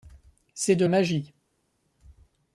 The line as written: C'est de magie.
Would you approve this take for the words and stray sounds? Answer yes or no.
yes